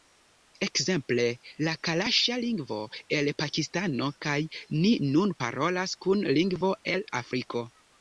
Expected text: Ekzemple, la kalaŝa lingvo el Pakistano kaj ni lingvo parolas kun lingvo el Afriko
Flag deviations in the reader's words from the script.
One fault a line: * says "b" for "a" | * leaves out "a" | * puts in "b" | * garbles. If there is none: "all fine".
* says "nun" for "lingvo"